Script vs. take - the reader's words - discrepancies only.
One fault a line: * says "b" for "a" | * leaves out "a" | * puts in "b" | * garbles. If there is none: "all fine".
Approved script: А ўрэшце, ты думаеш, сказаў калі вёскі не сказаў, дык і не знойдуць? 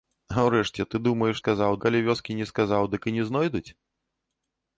all fine